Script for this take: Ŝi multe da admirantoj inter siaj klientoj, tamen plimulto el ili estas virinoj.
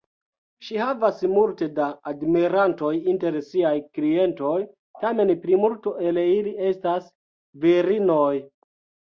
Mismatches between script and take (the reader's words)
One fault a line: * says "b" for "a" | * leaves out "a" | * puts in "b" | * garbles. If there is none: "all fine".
* puts in "havas"